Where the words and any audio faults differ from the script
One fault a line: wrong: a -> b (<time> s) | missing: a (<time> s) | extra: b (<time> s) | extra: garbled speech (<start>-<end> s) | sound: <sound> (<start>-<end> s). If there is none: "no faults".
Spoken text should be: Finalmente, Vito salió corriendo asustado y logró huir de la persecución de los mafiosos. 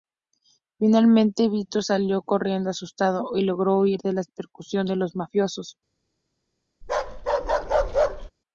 sound: bark (6.8-8.3 s)